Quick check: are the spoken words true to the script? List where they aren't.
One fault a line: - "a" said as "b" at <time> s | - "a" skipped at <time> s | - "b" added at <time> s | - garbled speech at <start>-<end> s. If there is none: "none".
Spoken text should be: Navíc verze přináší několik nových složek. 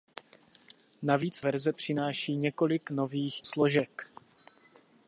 none